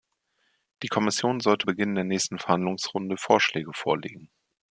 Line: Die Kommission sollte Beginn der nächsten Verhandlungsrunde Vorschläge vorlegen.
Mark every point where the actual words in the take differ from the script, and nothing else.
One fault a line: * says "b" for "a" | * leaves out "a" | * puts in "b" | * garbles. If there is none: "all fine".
all fine